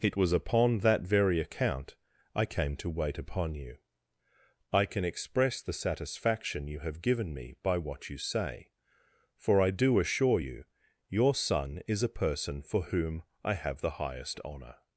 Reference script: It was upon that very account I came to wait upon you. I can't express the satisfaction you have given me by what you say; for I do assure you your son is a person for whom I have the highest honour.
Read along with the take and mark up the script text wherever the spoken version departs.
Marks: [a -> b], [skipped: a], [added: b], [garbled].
It was upon that very account I came to wait upon you. I [can't -> can] express the satisfaction you have given me by what you say; for I do assure you your son is a person for whom I have the highest honour.